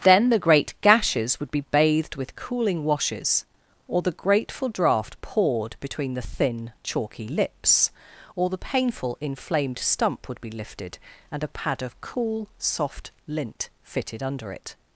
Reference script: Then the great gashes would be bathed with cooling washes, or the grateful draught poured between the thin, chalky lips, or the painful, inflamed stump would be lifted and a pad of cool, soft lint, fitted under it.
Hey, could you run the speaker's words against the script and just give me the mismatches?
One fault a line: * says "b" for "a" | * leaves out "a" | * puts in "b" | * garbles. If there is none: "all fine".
all fine